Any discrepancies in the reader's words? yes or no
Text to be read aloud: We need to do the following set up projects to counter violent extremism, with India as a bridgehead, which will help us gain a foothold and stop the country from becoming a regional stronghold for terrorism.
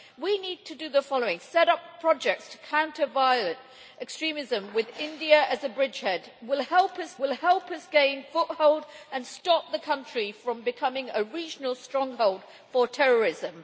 yes